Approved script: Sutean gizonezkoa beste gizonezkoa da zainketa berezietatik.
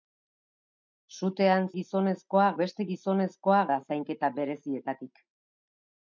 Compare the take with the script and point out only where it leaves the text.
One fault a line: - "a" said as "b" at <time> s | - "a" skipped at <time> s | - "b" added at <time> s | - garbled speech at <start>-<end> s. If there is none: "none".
none